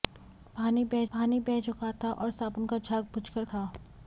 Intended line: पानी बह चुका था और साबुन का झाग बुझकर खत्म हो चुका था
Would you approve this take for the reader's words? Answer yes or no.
no